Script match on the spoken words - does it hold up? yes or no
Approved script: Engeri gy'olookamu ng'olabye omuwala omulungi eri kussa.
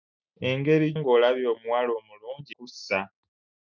no